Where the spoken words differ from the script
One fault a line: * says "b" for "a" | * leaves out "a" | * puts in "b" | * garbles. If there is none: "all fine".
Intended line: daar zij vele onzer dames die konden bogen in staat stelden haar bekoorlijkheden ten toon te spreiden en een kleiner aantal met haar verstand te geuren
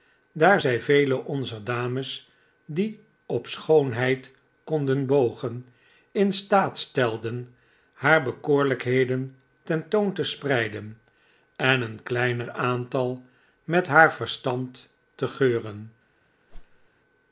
* puts in "op schoonheid"